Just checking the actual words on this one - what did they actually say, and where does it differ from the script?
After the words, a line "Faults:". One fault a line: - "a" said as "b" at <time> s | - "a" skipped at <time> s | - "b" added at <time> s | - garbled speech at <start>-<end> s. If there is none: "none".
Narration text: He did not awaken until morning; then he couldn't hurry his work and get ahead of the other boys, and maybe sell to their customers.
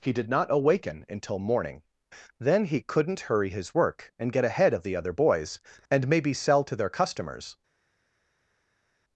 He did not awaken until morning; then he couldn't hurry his work and get ahead of the other boys, and maybe sell to their customers.
Faults:
none